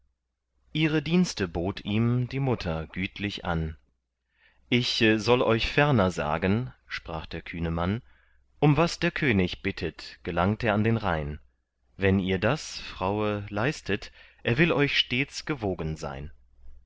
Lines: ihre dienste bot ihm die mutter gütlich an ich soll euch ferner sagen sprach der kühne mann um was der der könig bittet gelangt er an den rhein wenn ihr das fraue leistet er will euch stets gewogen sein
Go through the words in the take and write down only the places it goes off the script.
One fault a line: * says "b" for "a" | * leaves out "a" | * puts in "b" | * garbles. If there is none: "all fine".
* leaves out "der"